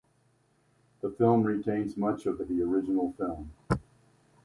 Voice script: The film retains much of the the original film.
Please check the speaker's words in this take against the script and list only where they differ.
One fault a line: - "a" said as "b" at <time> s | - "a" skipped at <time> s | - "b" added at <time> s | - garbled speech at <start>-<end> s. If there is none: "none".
none